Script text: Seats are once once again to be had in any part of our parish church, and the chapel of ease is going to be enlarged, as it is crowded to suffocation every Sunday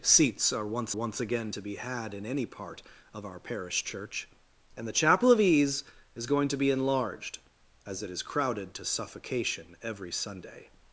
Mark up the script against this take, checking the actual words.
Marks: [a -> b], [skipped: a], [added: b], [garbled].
Seats are once once again to be had in any part of our parish church, and the chapel of ease is going to be enlarged, as it is crowded to suffocation every Sunday